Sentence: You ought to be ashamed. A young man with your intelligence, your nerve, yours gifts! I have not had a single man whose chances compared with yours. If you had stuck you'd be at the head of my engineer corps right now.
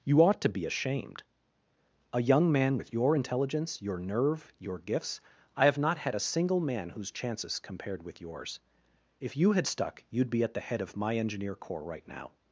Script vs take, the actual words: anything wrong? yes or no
yes